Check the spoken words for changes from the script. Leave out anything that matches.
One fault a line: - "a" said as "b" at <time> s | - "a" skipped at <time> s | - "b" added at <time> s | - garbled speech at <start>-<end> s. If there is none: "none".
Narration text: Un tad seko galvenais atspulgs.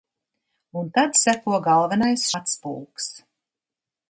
none